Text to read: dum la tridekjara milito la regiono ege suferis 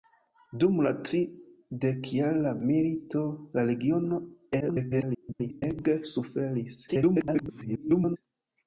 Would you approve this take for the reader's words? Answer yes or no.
no